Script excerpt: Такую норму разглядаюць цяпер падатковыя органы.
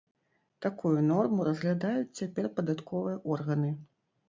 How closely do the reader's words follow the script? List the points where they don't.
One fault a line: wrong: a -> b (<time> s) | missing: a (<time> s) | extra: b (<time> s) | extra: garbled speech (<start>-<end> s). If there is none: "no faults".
no faults